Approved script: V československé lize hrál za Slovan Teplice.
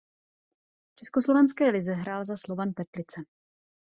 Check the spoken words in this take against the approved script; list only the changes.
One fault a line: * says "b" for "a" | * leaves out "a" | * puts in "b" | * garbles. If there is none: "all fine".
all fine